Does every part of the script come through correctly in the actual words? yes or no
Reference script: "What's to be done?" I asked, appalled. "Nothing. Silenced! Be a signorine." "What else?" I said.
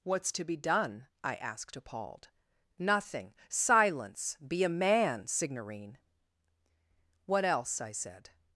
no